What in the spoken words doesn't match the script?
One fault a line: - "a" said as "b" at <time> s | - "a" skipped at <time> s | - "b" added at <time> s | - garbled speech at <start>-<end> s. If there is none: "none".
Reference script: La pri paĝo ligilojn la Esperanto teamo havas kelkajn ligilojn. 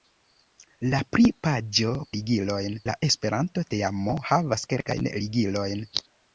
none